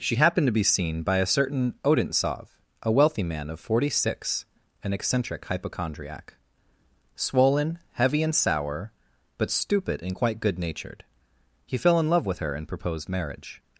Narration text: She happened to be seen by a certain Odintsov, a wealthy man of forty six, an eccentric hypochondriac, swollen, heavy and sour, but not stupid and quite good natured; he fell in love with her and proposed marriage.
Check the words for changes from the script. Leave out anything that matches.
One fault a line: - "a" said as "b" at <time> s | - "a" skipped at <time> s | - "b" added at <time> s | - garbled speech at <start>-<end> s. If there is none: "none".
- "not" skipped at 9.5 s